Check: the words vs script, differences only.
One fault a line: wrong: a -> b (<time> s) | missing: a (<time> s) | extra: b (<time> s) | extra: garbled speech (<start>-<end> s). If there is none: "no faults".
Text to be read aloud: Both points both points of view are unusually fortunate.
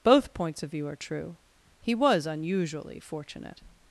missing: both points (0.6 s)
extra: true He was (0.9 s)